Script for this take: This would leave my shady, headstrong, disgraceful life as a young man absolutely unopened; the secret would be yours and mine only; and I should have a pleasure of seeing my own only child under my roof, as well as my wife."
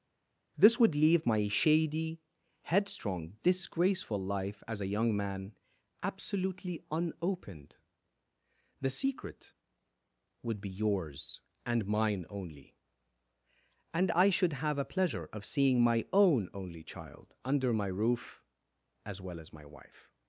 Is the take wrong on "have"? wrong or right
right